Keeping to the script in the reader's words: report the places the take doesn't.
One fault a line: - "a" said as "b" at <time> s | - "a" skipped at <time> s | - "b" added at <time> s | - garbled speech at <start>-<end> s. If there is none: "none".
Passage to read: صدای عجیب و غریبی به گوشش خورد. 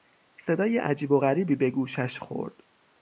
none